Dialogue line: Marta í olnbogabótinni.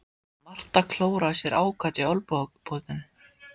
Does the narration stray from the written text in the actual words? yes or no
yes